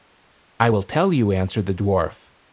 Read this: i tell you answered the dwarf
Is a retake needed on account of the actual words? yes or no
yes